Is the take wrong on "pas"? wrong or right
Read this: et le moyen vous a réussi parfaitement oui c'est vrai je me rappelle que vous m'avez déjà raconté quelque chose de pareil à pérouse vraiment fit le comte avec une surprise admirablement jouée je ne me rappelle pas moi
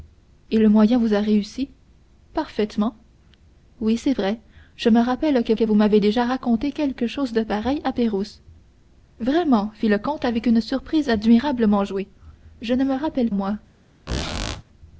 wrong